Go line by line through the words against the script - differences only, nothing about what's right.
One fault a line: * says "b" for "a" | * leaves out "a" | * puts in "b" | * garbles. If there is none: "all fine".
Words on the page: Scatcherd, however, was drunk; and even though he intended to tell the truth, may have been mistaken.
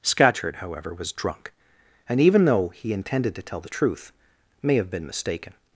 all fine